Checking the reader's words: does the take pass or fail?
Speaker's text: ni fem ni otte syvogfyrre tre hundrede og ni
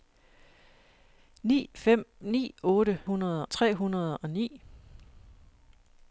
fail